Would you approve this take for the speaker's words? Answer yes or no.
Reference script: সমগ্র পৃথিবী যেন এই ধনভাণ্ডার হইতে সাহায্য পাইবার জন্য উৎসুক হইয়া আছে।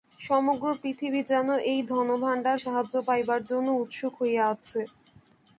no